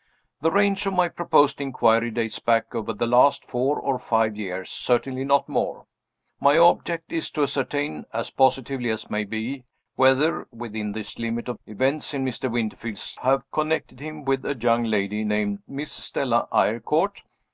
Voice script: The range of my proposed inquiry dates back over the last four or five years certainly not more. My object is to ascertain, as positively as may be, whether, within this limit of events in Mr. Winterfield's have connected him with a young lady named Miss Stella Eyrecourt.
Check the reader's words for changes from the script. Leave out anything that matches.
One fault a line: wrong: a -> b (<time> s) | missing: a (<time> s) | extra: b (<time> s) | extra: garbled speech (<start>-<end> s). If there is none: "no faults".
no faults